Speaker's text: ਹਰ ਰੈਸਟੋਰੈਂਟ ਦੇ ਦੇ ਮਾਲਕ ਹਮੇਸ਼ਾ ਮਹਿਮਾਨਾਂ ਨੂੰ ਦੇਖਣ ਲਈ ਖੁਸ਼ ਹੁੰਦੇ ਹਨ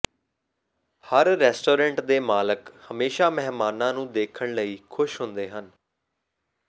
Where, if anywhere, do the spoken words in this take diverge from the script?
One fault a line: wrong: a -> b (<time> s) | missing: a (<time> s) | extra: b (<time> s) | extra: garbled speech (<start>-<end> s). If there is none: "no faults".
missing: ਦੇ (2.2 s)